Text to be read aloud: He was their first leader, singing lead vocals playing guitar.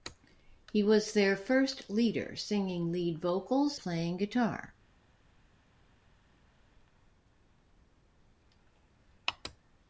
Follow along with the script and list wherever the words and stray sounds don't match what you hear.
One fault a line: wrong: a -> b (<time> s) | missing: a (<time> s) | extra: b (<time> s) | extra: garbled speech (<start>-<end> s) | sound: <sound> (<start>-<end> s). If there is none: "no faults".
no faults